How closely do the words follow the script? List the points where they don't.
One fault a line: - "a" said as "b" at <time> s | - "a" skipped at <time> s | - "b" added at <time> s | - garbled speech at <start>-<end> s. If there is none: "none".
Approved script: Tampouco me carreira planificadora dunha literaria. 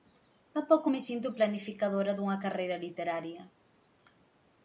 - "carreira" said as "sinto" at 1.1 s
- "carreira" added at 2.4 s